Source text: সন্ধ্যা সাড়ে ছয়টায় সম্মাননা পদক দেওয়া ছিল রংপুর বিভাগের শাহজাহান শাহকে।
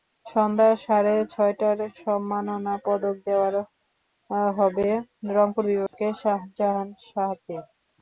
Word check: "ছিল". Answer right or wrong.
wrong